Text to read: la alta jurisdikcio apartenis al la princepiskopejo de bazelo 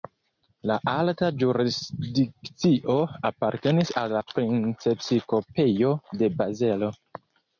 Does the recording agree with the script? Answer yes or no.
yes